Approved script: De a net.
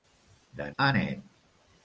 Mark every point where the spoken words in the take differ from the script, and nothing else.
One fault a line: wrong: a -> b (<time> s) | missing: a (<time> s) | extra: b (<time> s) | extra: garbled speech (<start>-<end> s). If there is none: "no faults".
no faults